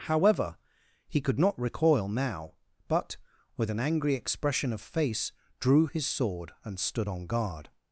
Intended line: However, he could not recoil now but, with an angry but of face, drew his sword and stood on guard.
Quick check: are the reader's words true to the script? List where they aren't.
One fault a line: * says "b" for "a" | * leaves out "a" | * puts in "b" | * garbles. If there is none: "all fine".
* says "expression" for "but"